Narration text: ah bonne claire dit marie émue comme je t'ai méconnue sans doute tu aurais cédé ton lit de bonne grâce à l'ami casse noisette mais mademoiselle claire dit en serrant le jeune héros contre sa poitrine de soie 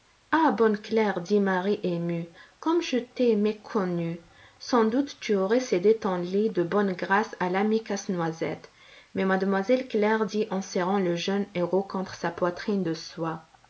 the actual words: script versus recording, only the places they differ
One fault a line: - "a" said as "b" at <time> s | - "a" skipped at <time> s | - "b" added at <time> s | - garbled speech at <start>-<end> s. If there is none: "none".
none